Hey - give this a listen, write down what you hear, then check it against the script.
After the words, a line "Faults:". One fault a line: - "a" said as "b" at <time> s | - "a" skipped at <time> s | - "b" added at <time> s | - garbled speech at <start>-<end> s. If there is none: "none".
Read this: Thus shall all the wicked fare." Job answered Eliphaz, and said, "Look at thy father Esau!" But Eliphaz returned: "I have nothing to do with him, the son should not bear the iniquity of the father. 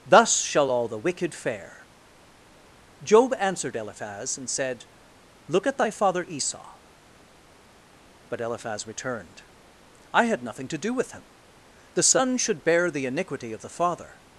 Thus shall all the wicked fare." Job answered Eliphaz, and said, "Look at thy father Esau!" But Eliphaz returned: "I had nothing to do with him, the son should bear the iniquity of the father.
Faults:
- "have" said as "had" at 10.3 s
- "not" skipped at 12.6 s